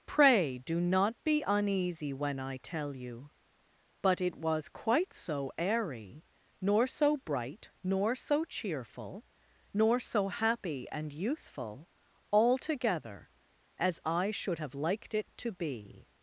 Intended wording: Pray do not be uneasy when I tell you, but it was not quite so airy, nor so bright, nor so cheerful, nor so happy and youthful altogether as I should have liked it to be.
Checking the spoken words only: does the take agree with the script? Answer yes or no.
no